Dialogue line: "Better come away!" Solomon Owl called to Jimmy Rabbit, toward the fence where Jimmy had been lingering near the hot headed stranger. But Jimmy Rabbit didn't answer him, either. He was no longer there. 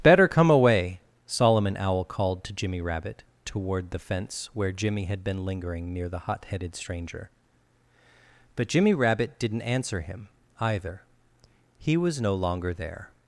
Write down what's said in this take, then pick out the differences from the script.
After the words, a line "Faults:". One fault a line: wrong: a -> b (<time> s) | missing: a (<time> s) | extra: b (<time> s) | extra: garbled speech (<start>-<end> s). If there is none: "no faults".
"Better come away!" Solomon Owl called to Jimmy Rabbit, toward the fence where Jimmy had been lingering near the hot headed stranger. But Jimmy Rabbit didn't answer him, either. He was no longer there.
Faults:
no faults